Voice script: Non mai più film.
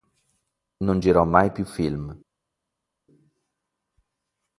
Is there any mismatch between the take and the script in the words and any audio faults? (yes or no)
yes